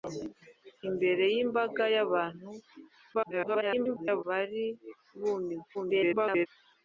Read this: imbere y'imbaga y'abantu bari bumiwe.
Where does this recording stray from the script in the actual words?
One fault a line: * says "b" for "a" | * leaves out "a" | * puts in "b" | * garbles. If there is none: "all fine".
* garbles
* garbles